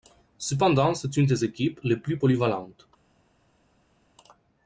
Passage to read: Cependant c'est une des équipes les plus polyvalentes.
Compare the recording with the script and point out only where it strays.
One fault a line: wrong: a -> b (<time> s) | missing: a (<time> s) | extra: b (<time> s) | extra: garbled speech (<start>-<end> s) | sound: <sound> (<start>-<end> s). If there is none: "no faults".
no faults